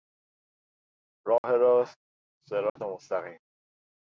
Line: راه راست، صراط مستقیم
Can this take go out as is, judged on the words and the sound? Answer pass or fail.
fail